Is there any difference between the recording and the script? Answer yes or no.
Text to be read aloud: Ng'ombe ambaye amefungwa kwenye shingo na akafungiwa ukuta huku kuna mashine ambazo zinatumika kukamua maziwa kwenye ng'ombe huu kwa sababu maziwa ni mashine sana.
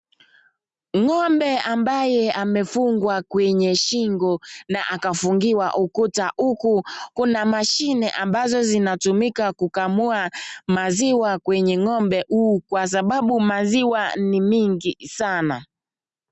yes